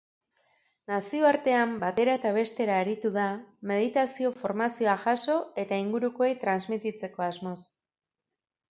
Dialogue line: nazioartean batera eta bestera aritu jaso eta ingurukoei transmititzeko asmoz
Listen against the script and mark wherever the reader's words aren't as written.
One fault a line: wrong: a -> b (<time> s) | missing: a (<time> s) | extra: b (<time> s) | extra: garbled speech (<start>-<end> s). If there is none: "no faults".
extra: da meditazio formazioa (3.2 s)